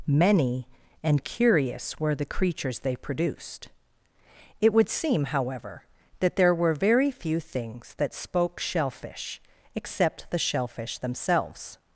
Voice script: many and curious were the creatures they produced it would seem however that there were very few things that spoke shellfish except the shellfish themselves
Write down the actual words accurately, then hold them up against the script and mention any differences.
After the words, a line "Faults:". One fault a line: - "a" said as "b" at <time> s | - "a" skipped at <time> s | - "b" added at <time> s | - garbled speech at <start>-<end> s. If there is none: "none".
many and curious were the creatures they produced it would seem however that there were very few things that spoke shellfish except the shellfish themselves
Faults:
none